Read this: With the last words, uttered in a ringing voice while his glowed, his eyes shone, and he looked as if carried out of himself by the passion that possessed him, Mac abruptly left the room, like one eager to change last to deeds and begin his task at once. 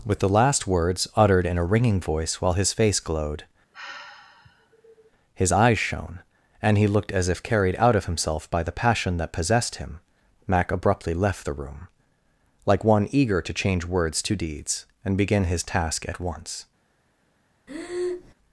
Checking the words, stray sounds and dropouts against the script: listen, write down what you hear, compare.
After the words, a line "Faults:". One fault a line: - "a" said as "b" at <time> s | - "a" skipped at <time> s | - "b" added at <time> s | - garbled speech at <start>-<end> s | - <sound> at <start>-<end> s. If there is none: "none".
With the last words, uttered in a ringing voice while his face glowed, his eyes shone, and he looked as if carried out of himself by the passion that possessed him, Mac abruptly left the room, like one eager to change words to deeds and begin his task at once.
Faults:
- "face" added at 2.7 s
- sigh at 3.7-5.1 s
- "last" said as "words" at 13.9 s
- breath at 17.7-18.3 s